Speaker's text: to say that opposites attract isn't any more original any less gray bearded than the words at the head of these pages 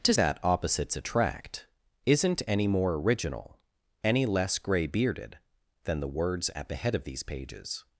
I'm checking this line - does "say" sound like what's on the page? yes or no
no